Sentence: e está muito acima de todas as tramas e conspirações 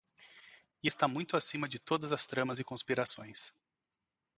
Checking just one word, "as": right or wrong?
right